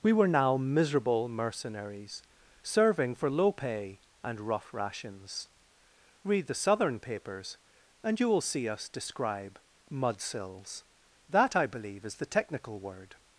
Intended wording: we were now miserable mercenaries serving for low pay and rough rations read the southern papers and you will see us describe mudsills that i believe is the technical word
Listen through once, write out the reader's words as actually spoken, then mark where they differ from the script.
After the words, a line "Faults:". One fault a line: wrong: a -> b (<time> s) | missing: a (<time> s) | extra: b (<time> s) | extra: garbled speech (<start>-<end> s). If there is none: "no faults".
we were now miserable mercenaries serving for low pay and rough rations read the southern papers and you will see us describe mudsills that i believe is the technical word
Faults:
no faults